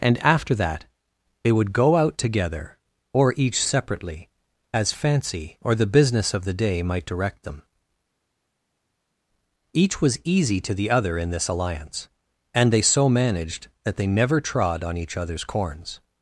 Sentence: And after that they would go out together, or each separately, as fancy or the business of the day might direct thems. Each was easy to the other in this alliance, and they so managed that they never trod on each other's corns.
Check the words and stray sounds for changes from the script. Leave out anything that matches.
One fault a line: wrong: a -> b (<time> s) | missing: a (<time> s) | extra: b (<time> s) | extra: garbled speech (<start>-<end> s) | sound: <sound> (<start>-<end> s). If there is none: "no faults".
wrong: thems -> them (7.4 s)